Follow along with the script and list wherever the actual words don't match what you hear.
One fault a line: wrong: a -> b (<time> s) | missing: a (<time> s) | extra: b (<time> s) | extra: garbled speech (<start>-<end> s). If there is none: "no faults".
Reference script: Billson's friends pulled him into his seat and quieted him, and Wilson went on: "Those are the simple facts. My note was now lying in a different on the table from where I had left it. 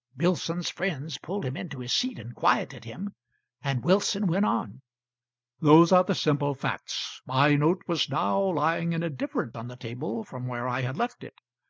no faults